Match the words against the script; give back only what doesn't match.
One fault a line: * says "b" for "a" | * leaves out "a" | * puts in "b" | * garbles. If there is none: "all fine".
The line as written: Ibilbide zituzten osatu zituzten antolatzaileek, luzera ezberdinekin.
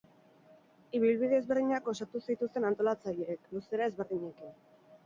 * says "ezberdinak" for "zituzten"